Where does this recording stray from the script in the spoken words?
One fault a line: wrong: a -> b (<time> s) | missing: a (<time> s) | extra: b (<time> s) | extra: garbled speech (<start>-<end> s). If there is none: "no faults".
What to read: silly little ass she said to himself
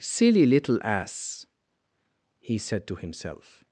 wrong: she -> he (2.4 s)